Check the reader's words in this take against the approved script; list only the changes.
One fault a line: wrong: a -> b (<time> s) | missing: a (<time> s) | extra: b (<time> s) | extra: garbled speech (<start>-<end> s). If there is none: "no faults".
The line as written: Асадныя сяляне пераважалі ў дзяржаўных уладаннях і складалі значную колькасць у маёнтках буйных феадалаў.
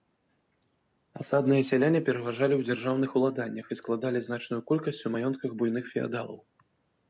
no faults